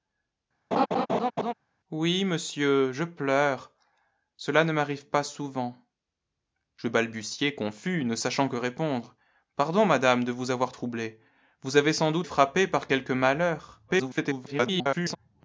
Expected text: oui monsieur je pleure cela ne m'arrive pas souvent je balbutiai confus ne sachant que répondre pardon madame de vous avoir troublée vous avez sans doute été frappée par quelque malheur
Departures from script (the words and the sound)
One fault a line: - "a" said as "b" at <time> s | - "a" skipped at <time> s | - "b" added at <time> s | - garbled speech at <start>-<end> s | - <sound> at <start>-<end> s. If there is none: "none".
- laugh at 0.7-1.5 s
- "été" skipped at 12.3 s
- garbled speech at 13.9-15.2 s